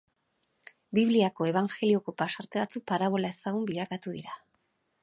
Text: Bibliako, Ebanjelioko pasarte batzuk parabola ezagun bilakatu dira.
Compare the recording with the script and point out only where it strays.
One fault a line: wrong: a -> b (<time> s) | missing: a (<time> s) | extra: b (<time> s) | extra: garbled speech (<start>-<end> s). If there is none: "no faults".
no faults